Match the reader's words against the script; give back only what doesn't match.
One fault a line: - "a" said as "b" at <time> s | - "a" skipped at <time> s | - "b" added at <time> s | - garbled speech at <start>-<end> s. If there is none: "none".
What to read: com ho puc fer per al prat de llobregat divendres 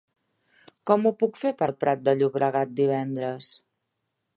none